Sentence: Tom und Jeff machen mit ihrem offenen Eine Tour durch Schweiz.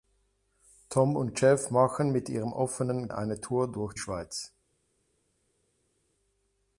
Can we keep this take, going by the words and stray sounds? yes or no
yes